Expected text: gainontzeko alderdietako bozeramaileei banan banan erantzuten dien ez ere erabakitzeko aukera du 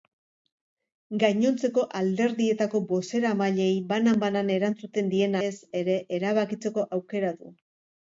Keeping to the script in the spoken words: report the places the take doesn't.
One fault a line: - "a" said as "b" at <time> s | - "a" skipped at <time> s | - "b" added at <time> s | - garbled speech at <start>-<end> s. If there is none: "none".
none